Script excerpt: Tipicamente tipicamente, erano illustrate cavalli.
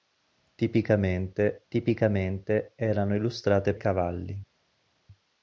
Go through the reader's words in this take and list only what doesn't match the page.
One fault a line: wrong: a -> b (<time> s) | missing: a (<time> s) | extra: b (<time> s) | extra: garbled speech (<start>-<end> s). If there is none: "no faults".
no faults